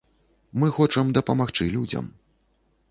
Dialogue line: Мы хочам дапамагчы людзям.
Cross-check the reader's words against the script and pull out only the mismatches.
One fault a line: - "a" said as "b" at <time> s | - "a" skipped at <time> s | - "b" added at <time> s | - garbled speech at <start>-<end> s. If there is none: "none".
none